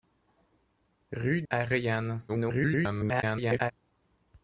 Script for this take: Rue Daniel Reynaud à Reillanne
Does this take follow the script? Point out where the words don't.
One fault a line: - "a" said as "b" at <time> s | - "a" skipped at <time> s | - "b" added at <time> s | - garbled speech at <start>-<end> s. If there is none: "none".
- "Daniel Reynaud" skipped at 1.4 s
- garbled speech at 2.3-3.7 s